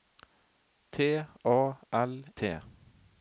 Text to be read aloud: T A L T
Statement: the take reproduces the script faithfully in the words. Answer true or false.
true